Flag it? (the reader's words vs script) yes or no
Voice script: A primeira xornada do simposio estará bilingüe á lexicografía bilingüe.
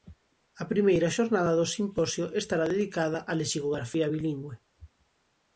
yes